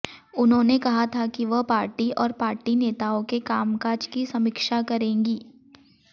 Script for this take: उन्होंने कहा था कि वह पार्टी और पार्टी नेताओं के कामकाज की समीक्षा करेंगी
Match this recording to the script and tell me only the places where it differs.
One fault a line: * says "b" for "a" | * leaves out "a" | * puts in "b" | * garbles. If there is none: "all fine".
all fine